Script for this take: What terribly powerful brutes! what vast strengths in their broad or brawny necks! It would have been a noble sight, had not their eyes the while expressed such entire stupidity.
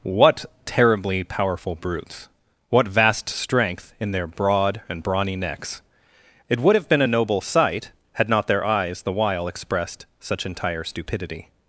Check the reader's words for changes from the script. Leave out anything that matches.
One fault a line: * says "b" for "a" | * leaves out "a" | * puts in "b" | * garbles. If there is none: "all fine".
* says "strength" for "strengths"
* says "and" for "or"